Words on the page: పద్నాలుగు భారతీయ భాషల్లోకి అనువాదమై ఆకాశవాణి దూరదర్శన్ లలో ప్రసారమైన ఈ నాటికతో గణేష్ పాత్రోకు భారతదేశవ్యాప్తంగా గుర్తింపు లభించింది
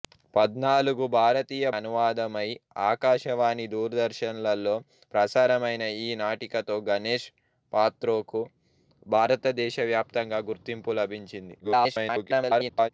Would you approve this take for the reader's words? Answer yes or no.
no